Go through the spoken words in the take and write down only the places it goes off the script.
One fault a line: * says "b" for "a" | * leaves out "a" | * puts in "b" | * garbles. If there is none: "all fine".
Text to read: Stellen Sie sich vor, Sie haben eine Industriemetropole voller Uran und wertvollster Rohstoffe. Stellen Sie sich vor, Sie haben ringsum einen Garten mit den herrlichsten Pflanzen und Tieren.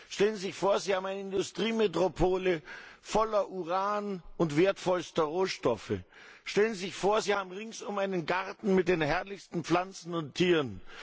all fine